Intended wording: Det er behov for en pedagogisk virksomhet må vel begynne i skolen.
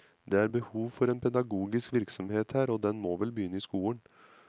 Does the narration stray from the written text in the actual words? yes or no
yes